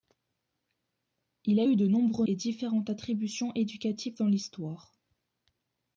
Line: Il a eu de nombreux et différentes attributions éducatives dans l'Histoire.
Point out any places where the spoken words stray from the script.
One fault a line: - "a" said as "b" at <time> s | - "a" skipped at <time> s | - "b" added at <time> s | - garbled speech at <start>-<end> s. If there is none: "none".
none